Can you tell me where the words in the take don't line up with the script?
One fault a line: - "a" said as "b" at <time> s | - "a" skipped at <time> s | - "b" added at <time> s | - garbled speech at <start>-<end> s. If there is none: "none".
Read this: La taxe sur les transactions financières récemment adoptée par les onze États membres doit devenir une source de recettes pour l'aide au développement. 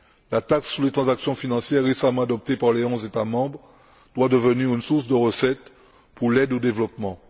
none